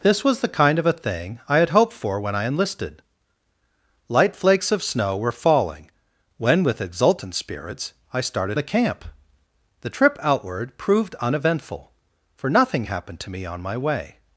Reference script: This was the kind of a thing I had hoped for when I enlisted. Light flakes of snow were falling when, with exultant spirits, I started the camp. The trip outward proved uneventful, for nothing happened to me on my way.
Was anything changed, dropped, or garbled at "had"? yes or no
no